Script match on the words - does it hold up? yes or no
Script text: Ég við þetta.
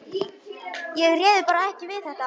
no